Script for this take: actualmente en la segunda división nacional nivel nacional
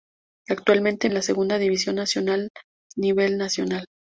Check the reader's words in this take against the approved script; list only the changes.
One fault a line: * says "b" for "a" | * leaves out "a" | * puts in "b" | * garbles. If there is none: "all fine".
all fine